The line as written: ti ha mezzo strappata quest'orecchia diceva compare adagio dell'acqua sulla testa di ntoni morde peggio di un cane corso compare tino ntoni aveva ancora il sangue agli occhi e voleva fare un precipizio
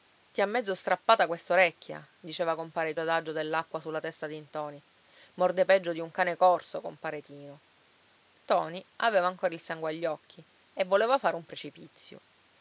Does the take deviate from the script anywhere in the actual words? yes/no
no